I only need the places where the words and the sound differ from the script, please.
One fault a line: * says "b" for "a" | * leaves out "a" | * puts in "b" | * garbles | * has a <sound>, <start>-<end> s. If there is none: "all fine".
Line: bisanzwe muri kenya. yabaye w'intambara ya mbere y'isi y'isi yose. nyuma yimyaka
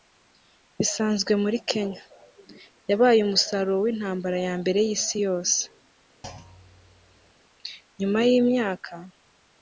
* puts in "umusaruro"
* leaves out "y'isi"
* has a thud, 6.2-7.3 s